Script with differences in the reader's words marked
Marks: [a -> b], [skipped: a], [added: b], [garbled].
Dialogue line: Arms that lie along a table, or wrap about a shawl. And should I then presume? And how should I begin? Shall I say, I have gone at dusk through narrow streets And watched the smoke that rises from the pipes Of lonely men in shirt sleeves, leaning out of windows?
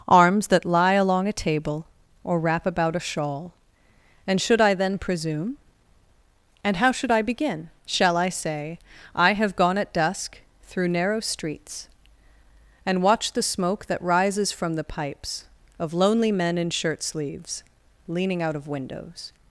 Arms that lie along a table, or wrap about a shawl. And should I then presume? And how should I begin? Shall I say, I have gone at dusk through narrow streets And watched the smoke that rises from the pipes Of lonely men in shirt sleeves, leaning out of windows?